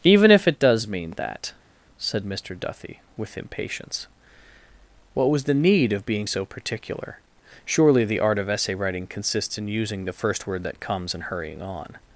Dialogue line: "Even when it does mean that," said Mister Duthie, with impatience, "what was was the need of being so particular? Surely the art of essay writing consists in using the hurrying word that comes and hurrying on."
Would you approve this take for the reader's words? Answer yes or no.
no